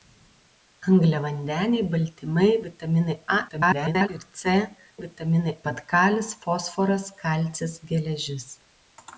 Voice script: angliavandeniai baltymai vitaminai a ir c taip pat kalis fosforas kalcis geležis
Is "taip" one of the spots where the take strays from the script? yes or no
yes